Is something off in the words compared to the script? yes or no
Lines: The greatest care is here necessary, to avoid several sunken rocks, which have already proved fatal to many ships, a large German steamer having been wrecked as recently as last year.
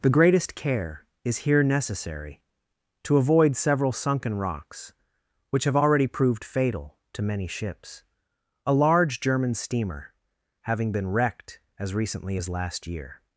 no